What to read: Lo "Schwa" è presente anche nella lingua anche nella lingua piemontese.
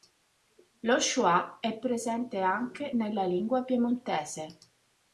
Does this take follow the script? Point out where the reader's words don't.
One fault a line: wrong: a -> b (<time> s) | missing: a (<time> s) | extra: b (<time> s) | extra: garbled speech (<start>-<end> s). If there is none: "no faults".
missing: anche nella lingua (3.7 s)